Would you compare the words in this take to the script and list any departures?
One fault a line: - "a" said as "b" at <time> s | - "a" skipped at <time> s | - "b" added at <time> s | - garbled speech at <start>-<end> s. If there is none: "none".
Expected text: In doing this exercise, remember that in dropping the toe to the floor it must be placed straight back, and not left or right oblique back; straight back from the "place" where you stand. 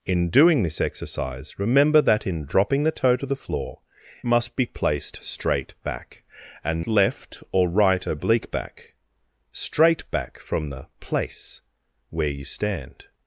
- "it" skipped at 3.8 s
- "not" skipped at 6.8 s